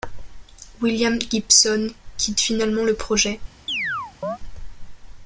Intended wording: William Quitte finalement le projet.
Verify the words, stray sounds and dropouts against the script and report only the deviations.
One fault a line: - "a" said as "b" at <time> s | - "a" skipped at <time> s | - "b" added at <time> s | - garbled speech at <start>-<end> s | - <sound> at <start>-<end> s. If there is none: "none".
- "Gibson" added at 1.2 s
- chirp at 3.7-4.4 s